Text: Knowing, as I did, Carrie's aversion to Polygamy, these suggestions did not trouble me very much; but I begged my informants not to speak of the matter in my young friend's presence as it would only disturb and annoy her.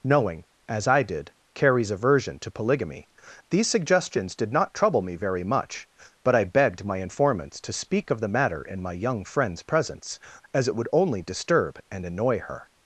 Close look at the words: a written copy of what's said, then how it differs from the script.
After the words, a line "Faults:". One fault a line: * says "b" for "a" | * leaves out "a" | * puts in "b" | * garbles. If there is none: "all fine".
Knowing, as I did, Carrie's aversion to Polygamy, these suggestions did not trouble me very much; but I begged my informants to speak of the matter in my young friend's presence as it would only disturb and annoy her.
Faults:
* leaves out "not"